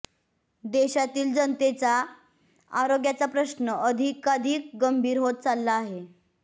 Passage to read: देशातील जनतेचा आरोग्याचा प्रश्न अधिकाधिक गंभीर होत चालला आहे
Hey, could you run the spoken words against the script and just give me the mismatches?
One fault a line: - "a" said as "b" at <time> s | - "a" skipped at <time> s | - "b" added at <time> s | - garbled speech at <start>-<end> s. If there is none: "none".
none